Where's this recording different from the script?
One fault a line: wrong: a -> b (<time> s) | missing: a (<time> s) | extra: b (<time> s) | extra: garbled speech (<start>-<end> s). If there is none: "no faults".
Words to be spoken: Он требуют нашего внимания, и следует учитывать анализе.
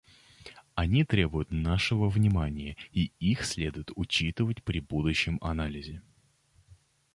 wrong: Он -> Они (0.7 s)
extra: их (3.2 s)
extra: при будущем (4.6 s)